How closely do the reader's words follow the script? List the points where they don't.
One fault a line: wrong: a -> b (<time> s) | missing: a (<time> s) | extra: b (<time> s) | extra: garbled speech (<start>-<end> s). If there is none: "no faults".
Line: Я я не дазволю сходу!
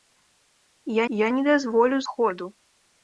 no faults